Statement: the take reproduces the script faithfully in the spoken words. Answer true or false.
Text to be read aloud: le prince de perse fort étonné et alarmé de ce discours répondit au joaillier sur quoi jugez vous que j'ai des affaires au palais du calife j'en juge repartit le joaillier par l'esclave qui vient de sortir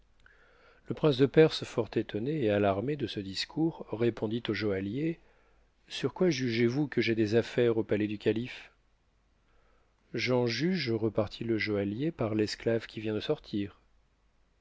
true